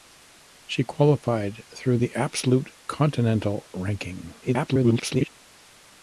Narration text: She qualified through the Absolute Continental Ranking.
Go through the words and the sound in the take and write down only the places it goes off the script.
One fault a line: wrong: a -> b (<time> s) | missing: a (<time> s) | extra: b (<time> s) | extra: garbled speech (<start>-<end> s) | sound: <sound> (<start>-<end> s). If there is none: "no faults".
extra: garbled speech (4.4-5.3 s)